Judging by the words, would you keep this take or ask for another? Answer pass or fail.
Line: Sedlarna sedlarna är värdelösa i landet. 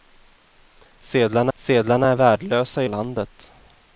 pass